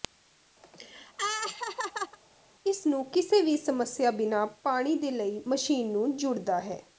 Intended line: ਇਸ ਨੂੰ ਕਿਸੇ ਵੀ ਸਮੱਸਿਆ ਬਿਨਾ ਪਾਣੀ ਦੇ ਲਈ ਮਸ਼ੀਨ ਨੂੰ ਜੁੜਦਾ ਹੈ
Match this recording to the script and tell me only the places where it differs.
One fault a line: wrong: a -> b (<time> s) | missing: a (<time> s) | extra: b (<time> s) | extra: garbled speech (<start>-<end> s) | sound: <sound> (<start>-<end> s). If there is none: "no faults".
sound: laugh (0.6-2.2 s)